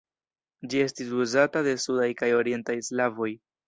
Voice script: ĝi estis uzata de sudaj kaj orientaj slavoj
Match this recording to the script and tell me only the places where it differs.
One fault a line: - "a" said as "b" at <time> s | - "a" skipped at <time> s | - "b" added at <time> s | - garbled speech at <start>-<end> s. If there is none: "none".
none